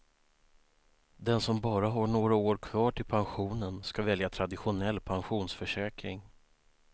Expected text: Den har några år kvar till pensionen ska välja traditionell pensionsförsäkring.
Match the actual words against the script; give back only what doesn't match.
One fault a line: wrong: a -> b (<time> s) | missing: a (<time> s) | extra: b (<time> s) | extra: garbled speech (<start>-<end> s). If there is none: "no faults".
extra: som bara (1.4 s)